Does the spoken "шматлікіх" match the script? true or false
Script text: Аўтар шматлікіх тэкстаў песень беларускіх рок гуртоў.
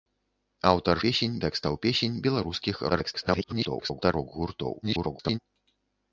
false